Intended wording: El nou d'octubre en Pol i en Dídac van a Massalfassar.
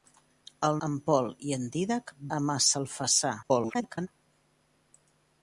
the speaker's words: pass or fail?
fail